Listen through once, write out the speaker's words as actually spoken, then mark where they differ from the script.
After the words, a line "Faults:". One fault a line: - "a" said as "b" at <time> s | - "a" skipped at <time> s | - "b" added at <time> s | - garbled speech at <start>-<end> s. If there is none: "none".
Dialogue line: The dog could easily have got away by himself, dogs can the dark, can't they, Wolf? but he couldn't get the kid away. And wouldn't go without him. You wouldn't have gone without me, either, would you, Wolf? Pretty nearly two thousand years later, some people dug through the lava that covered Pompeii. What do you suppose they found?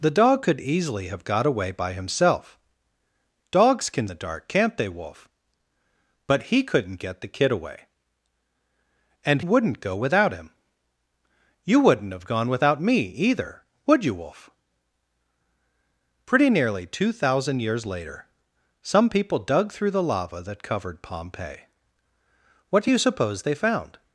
The dog could easily have got away by himself, dogs can the dark, can't they, Wolf? but he couldn't get the kid away. And wouldn't go without him. You wouldn't have gone without me, either, would you, Wolf? Pretty nearly two thousand years later, some people dug through the lava that covered Pompeii. What do you suppose they found?
Faults:
none